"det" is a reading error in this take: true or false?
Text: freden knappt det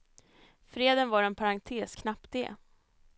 false